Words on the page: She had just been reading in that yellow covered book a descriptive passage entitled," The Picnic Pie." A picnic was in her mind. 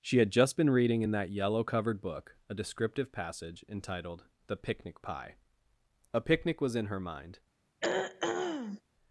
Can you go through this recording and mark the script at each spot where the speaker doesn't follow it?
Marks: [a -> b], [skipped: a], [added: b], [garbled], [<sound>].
She had just been reading in that yellow covered book a descriptive passage entitled," The Picnic Pie." A picnic was in her mind. [throat clearing]